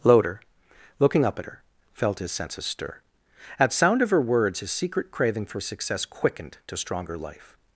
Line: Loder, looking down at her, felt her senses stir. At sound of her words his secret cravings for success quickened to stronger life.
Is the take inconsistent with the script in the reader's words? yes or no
yes